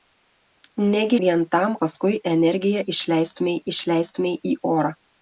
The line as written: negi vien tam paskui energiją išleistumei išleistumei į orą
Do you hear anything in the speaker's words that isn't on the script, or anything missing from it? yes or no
no